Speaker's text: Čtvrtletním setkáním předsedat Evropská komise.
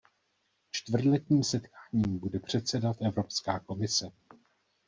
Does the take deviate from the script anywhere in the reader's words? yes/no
yes